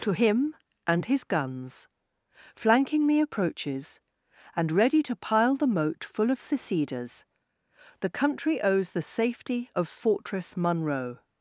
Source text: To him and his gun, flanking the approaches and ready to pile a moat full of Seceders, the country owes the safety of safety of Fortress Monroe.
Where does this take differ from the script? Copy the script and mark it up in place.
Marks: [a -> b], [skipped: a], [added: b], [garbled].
To him and his [gun, -> guns] flanking the approaches and ready to pile [a -> the] moat full of Seceders, the country owes the safety of [skipped: safety of] Fortress Monroe.